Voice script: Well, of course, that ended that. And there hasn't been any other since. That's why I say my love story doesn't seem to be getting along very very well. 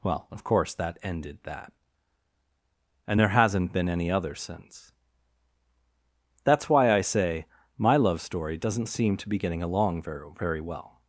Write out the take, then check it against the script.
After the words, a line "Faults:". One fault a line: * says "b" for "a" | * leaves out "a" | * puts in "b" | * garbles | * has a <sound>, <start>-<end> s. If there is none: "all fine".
Well, of course, that ended that. And there hasn't been any other since. That's why I say my love story doesn't seem to be getting along very very well.
Faults:
all fine